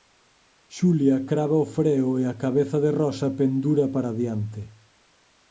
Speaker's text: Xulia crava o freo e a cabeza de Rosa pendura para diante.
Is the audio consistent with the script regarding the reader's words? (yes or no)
yes